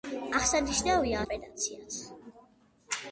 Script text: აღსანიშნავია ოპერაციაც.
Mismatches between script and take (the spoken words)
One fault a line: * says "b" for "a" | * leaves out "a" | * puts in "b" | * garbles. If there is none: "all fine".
all fine